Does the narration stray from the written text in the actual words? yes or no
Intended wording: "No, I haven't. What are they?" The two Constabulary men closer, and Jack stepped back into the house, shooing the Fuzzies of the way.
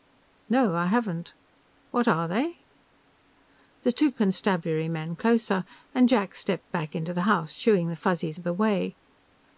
no